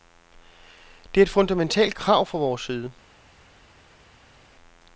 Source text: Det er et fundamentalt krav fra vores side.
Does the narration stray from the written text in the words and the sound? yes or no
no